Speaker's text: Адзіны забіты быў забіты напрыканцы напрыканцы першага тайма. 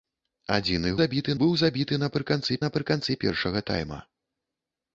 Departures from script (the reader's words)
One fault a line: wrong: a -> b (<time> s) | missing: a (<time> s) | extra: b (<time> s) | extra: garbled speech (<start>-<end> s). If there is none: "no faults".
no faults